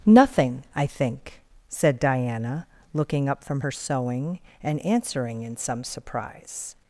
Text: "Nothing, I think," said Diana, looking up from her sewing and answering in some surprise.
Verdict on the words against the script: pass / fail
pass